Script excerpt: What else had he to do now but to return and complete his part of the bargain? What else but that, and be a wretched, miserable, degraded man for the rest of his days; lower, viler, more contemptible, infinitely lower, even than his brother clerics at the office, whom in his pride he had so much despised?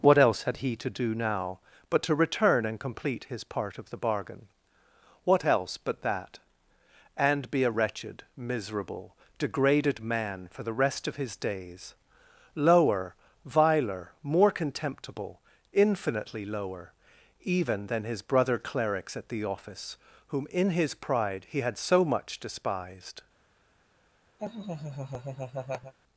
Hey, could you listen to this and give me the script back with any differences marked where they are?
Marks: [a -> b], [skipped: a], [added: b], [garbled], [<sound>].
What else had he to do now but to return and complete his part of the bargain? What else but that, and be a wretched, miserable, degraded man for the rest of his days; lower, viler, more contemptible, infinitely lower, even than his brother clerics at the office, whom in his pride he had so much despised? [laugh]